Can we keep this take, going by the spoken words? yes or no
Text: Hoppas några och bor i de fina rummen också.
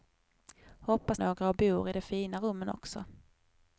yes